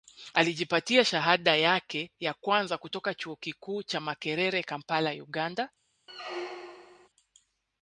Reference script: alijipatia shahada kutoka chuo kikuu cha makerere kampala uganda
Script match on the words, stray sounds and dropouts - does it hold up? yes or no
no